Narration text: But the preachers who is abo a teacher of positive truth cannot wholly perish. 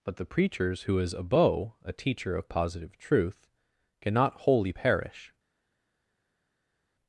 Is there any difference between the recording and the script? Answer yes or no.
no